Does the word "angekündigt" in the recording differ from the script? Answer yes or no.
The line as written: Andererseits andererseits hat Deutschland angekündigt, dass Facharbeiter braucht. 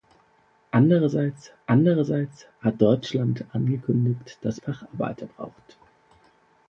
no